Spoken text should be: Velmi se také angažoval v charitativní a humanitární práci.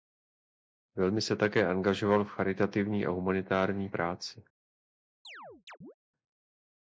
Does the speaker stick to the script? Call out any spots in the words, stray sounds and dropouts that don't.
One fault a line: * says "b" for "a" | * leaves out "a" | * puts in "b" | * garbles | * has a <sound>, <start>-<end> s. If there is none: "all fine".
* has a chirp, 5.2-5.9 s